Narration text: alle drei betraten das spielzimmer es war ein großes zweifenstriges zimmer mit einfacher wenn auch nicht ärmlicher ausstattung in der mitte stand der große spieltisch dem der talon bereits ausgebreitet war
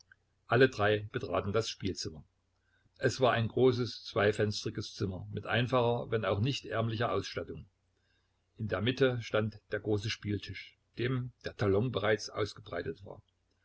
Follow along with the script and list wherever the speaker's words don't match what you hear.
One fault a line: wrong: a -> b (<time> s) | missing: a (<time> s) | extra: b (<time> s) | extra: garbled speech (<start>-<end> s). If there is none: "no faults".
no faults